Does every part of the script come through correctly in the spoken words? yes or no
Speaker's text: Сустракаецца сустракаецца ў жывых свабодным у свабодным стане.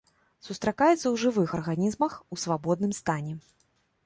no